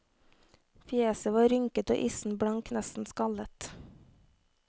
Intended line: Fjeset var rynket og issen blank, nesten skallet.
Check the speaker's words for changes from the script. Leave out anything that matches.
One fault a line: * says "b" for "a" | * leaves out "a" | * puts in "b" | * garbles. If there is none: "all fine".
all fine